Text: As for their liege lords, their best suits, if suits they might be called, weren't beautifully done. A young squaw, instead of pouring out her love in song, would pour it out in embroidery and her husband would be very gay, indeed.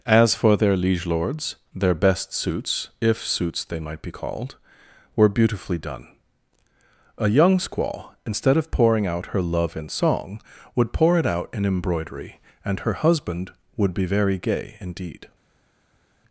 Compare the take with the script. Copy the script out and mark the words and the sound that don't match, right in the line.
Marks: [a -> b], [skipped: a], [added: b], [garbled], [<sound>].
As for their liege lords, their best suits, if suits they might be called, [weren't -> were] beautifully done. A young squaw, instead of pouring out her love in song, would pour it out in embroidery and her husband would be very gay, indeed.